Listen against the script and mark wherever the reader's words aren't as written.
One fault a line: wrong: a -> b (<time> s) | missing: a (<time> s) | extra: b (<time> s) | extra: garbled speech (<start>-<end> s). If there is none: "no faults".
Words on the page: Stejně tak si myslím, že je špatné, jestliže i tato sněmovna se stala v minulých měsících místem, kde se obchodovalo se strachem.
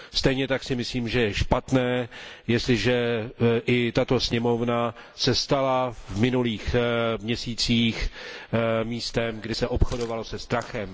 no faults